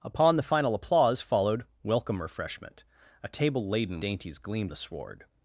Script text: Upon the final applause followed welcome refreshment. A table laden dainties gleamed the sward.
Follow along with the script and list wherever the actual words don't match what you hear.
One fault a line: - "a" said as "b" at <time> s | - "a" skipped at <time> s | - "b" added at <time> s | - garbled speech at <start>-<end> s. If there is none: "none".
none